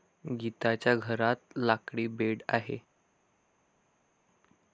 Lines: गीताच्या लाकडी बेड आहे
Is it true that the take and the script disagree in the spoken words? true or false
true